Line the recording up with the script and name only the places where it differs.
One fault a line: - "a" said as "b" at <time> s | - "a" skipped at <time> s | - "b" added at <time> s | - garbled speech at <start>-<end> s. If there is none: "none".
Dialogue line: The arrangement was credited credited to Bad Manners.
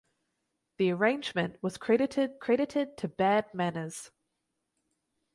none